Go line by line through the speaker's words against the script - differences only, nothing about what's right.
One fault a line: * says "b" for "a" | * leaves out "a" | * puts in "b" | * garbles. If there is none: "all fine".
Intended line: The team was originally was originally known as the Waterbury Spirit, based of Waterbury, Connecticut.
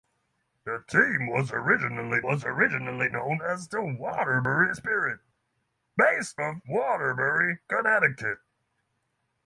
all fine